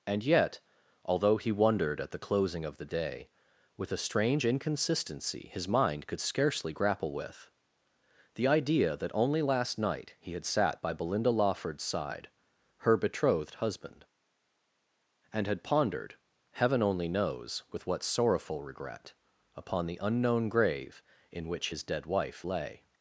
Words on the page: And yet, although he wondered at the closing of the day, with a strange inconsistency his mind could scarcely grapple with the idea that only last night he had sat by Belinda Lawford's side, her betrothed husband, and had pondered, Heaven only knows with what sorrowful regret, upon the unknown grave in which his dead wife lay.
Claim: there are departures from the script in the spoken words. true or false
false